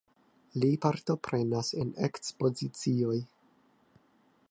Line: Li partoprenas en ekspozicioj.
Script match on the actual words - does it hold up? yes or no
yes